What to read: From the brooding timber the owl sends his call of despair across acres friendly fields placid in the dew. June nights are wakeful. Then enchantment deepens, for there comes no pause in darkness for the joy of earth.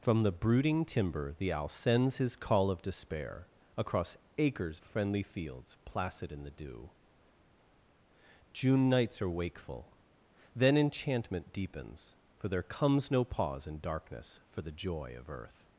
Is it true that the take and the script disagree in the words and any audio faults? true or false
false